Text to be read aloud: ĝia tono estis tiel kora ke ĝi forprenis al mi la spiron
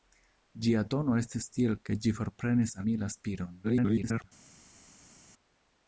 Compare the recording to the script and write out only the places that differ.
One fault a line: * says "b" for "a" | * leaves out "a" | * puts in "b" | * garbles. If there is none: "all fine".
* leaves out "kora"
* leaves out "al"
* garbles